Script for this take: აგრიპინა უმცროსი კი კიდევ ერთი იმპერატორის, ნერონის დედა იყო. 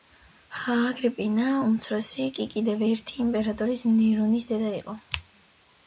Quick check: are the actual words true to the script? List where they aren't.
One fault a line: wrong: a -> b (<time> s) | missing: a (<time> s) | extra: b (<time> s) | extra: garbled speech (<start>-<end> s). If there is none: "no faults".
no faults